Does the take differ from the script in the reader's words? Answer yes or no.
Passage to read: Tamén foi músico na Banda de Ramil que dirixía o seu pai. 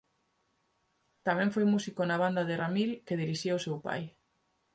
no